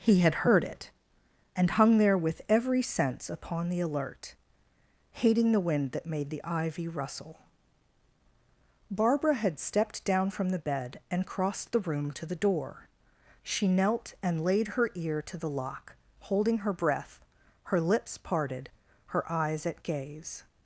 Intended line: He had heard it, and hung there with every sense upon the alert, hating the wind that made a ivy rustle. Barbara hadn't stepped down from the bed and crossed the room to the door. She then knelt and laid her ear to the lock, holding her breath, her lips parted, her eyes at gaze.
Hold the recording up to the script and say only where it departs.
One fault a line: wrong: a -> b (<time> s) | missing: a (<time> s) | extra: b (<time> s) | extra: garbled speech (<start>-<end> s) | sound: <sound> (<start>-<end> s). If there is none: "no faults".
wrong: a -> the (6.3 s)
wrong: hadn't -> had (9.3 s)
missing: then (13.7 s)